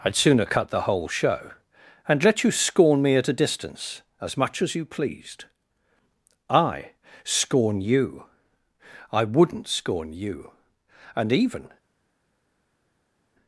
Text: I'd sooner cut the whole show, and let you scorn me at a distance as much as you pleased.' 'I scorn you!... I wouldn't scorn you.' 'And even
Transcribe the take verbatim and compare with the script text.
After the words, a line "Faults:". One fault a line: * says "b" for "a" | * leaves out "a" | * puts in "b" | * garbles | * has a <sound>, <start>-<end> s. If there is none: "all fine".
I'd sooner cut the whole show, and let you scorn me at a distance as much as you pleased.' 'I scorn you!... I wouldn't scorn you.' 'And even
Faults:
all fine